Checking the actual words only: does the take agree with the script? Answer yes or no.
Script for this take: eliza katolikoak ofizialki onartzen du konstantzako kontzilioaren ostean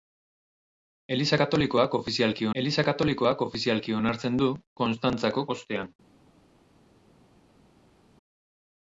no